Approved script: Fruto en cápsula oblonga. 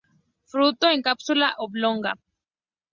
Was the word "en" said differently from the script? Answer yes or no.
no